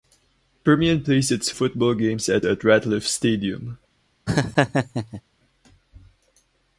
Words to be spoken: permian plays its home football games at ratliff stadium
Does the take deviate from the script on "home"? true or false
true